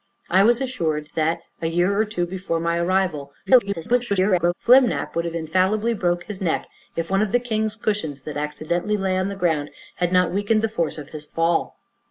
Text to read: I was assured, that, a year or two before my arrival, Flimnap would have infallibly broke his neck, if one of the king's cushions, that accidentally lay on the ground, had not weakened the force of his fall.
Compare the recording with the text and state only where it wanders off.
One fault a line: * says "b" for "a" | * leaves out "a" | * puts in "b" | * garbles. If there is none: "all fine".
* garbles